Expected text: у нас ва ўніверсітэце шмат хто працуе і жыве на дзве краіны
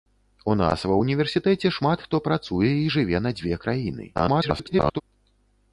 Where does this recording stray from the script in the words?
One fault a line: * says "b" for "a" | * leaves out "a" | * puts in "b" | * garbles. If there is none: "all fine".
* garbles